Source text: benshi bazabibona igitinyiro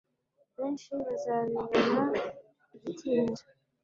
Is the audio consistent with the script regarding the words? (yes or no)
yes